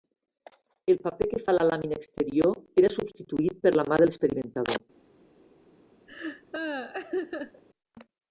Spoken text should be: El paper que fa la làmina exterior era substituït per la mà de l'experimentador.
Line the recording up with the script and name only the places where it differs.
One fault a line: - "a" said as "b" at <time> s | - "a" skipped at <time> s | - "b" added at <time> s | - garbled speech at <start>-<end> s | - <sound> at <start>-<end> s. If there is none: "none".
- laugh at 6.1-7.6 s